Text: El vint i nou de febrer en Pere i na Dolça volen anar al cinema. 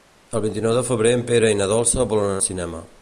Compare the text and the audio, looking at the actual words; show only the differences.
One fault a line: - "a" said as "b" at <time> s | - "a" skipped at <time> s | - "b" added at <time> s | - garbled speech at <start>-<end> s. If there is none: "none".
- "anar" skipped at 2.4 s